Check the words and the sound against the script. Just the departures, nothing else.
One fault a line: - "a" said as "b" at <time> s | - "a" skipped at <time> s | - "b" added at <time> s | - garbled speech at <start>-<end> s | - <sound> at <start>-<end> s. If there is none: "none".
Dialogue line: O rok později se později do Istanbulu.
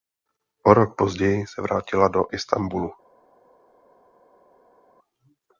- "později" said as "vrátila" at 1.6 s